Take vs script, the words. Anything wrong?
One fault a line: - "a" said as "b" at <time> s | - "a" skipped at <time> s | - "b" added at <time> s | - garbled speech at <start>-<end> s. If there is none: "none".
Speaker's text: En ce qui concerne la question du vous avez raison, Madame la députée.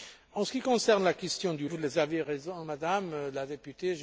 none